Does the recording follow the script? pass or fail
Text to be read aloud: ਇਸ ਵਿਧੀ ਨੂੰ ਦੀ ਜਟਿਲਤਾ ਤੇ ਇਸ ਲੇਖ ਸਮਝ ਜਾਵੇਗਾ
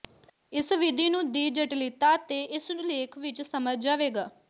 fail